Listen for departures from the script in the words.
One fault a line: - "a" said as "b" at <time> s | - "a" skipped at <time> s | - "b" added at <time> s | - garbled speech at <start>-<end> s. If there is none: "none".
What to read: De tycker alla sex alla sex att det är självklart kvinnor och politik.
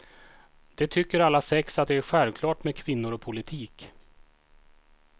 - "alla sex" skipped at 1.8 s
- "med" added at 2.6 s